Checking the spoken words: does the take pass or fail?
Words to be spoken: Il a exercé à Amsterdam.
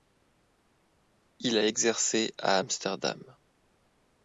pass